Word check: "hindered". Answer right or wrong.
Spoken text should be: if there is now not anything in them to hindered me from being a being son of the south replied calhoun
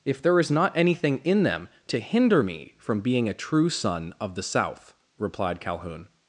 wrong